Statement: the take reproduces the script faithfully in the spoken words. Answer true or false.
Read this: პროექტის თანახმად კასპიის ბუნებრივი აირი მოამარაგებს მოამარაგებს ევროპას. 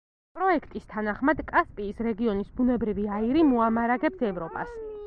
false